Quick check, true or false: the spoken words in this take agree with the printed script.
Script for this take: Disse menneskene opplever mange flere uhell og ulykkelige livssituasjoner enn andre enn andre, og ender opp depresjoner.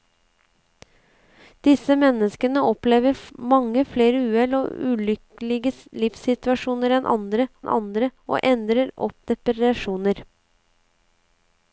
true